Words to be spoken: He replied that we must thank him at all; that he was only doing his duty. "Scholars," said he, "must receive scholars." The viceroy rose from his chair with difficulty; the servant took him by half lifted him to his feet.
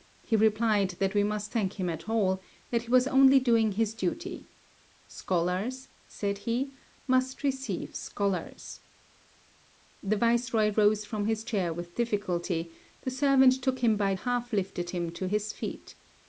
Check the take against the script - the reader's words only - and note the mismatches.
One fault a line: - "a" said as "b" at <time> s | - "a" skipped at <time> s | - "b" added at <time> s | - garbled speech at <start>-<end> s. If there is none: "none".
none